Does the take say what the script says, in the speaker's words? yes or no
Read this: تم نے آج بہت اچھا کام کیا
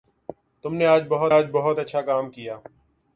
no